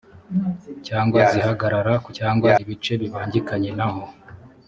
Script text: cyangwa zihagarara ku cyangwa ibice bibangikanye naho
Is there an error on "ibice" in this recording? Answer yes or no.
no